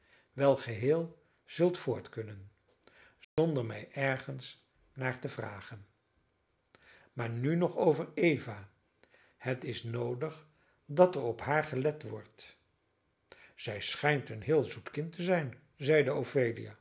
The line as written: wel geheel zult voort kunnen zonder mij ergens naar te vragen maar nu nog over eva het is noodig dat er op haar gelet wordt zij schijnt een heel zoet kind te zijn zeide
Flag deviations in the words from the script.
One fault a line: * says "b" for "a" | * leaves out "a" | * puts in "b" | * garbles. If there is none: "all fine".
all fine